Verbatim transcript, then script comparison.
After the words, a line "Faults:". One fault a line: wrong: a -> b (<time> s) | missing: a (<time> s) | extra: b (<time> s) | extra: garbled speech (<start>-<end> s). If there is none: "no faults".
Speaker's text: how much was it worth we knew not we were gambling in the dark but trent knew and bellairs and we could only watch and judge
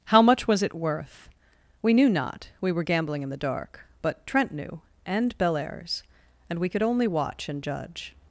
how much was it worth we knew not we were gambling in the dark but trent knew and bellairs and we could only watch and judge
Faults:
no faults